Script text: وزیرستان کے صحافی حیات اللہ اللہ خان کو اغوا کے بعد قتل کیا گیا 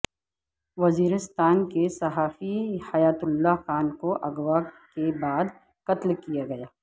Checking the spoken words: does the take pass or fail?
fail